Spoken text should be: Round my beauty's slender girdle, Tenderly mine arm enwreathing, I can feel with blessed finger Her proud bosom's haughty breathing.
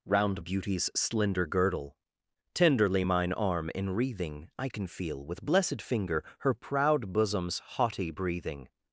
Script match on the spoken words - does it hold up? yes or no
no